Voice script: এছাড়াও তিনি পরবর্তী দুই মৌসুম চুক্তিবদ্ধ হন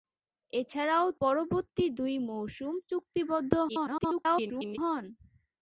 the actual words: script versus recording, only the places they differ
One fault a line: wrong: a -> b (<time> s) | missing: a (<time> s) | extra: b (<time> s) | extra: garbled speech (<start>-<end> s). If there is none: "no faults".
missing: তিনি (1.1 s)
extra: garbled speech (3.7-4.8 s)